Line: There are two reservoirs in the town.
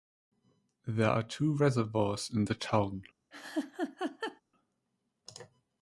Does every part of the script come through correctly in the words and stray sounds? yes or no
no